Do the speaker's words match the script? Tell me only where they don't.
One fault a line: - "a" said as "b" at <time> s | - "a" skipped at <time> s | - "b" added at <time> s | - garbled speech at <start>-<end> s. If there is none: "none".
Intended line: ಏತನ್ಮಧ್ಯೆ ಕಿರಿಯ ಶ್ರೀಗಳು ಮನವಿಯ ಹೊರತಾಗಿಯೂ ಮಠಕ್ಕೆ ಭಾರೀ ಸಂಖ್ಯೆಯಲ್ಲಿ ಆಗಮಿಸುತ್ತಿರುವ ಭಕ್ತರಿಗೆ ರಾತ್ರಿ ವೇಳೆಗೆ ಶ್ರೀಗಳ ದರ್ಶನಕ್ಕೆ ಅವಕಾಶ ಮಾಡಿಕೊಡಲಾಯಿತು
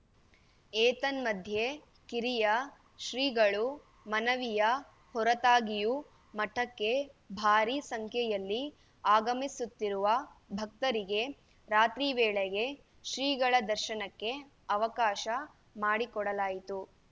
none